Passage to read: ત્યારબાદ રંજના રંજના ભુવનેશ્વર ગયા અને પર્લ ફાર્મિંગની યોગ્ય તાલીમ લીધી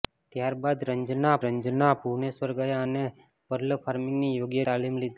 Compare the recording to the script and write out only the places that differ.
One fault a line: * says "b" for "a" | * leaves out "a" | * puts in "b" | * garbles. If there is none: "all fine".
all fine